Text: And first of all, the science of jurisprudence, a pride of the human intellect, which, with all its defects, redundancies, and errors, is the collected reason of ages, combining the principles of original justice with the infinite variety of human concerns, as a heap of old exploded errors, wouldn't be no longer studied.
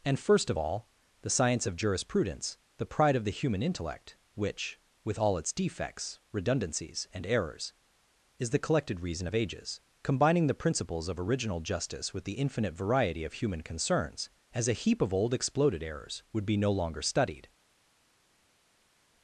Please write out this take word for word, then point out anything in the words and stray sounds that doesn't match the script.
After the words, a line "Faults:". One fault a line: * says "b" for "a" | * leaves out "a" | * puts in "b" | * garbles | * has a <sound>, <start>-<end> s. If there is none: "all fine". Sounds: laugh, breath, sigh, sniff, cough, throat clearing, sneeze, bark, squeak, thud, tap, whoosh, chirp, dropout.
And first of all, the science of jurisprudence, the pride of the human intellect, which, with all its defects, redundancies, and errors, is the collected reason of ages, combining the principles of original justice with the infinite variety of human concerns, as a heap of old exploded errors, would be no longer studied.
Faults:
* says "the" for "a"
* says "would" for "wouldn't"